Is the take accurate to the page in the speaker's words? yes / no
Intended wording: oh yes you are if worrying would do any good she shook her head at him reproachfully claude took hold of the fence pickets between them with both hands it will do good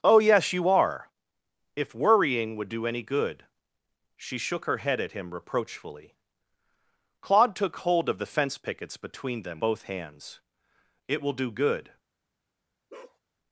no